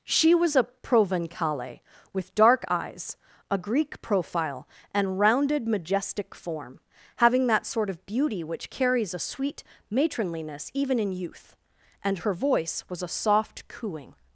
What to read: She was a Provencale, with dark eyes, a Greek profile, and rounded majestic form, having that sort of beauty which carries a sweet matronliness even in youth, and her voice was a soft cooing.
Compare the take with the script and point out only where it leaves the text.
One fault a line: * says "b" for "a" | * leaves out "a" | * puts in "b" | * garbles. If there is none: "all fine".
all fine